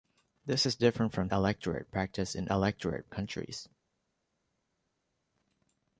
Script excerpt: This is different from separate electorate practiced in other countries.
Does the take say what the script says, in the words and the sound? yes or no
no